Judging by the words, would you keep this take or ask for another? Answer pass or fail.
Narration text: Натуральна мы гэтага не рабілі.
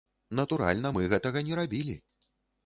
pass